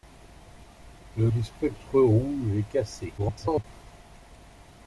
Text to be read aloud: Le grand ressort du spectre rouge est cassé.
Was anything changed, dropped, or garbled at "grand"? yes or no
yes